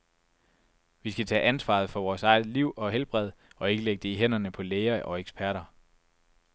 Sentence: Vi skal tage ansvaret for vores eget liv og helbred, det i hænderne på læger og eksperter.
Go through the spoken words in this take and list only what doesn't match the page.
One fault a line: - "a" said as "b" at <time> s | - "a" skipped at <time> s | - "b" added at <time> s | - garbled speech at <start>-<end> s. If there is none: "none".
- "og ikke lægge" added at 3.5 s